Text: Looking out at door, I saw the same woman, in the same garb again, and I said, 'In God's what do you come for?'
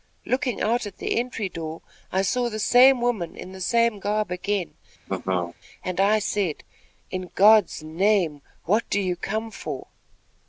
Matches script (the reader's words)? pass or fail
fail